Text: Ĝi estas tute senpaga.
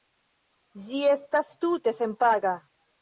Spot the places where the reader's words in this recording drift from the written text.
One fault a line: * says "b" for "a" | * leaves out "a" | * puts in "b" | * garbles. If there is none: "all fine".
all fine